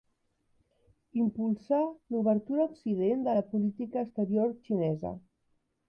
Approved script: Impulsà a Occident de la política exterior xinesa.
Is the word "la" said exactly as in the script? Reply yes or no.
yes